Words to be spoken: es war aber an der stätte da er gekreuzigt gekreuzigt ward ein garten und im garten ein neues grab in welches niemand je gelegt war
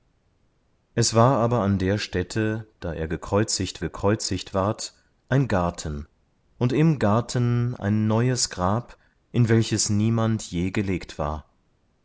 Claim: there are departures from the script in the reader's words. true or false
false